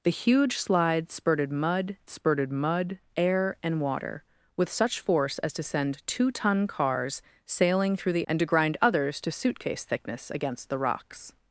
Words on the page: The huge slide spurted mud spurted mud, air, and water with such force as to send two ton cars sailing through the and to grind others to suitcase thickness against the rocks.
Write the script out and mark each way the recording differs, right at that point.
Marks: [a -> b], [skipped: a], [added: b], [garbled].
The huge slide spurted mud spurted mud, air, and water with such force as to send two ton cars sailing through the and to grind others to suitcase thickness against the rocks.